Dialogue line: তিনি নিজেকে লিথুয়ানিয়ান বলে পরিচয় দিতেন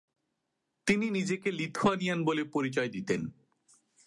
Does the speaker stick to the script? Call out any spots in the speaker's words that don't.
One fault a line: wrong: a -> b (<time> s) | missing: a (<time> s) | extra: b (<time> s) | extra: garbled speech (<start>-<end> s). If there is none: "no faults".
no faults